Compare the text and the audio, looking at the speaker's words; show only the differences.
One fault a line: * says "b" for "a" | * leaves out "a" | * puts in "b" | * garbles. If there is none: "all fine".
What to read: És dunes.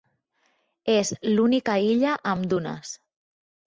* puts in "l'única illa amb"